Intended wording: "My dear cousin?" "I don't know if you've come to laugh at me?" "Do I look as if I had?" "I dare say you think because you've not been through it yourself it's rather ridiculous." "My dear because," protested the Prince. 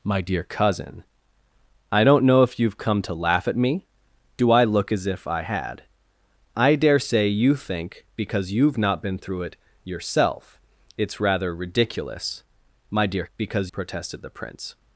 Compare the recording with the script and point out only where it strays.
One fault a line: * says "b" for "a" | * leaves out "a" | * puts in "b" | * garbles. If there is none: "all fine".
all fine